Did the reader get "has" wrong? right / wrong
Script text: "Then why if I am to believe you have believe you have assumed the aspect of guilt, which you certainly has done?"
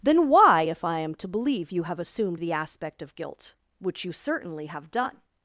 wrong